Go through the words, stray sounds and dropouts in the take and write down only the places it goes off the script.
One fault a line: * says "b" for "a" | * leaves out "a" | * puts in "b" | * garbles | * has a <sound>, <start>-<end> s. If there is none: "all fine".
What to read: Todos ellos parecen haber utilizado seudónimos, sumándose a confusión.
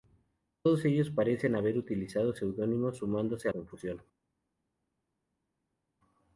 all fine